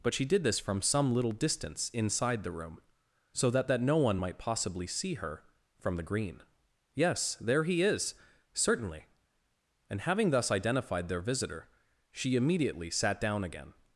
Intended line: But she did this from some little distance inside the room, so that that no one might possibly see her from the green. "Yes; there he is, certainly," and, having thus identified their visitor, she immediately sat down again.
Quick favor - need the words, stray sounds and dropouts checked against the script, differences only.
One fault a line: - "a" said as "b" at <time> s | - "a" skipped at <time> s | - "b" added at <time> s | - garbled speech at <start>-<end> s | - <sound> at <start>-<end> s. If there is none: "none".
none